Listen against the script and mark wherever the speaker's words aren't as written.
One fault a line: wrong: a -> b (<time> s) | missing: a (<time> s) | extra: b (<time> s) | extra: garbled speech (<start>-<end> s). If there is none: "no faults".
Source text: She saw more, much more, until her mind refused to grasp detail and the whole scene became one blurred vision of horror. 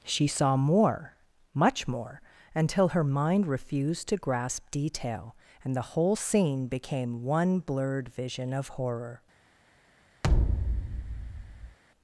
no faults